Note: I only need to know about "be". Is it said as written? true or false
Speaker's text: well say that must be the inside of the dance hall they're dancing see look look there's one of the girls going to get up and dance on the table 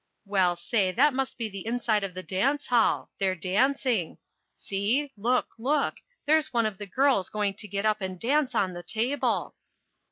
true